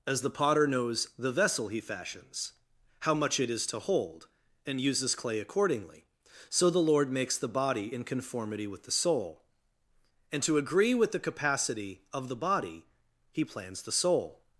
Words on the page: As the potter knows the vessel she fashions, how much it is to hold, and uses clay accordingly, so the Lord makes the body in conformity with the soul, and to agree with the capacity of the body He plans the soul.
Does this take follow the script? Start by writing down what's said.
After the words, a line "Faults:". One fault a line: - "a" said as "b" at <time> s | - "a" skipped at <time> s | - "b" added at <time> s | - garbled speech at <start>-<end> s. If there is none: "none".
As the potter knows the vessel he fashions, how much it is to hold, and uses clay accordingly, so the Lord makes the body in conformity with the soul, and to agree with the capacity of the body He plans the soul.
Faults:
- "she" said as "he" at 1.7 s